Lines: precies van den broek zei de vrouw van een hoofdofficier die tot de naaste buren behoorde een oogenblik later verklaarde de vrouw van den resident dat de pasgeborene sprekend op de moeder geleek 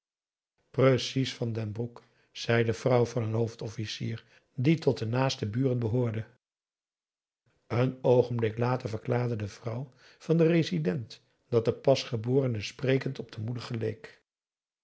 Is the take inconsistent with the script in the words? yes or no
no